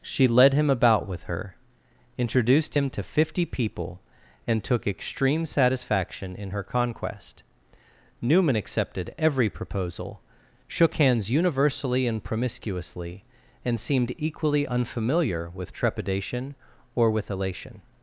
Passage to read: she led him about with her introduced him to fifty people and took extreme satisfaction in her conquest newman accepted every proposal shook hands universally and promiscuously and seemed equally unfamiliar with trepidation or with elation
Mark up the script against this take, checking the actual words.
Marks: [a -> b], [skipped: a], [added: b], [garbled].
she led him about with her introduced him to fifty people and took extreme satisfaction in her conquest newman accepted every proposal shook hands universally and promiscuously and seemed equally unfamiliar with trepidation or with elation